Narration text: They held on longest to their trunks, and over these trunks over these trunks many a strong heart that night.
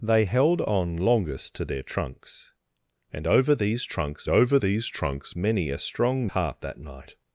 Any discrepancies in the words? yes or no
no